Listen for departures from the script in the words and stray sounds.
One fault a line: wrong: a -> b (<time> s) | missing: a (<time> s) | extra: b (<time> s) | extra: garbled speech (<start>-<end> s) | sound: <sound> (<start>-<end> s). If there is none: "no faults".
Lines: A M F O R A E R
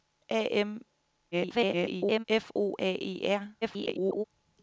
extra: garbled speech (1.3-2.2 s)
missing: R (2.8 s)
extra: garbled speech (3.6-4.2 s)